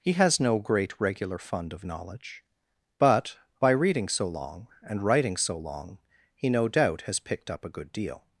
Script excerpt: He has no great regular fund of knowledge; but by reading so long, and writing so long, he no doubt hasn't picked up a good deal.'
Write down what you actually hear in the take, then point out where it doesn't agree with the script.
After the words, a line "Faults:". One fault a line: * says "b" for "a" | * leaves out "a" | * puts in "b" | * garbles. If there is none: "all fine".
He has no great regular fund of knowledge; but by reading so long, and writing so long, he no doubt has picked up a good deal.'
Faults:
* says "has" for "hasn't"